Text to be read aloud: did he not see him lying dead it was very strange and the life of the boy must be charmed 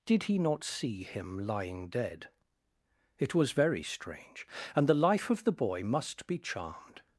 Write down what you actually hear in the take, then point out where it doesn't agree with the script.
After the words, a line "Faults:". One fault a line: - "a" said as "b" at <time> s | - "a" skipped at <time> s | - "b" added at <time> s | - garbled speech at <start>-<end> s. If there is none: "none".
did he not see him lying dead it was very strange and the life of the boy must be charmed
Faults:
none